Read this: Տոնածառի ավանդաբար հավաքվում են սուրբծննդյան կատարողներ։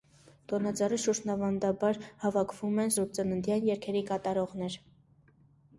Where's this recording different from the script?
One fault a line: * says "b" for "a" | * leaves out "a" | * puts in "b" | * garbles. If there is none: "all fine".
* puts in "շուրջն"
* puts in "երգերի"